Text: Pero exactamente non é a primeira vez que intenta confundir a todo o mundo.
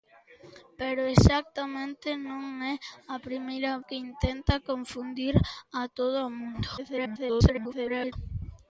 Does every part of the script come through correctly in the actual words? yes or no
no